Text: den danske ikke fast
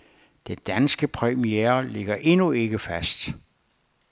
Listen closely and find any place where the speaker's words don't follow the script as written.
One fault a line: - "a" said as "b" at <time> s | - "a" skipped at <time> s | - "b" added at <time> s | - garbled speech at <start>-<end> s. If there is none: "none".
- "premiere ligger endnu" added at 1.0 s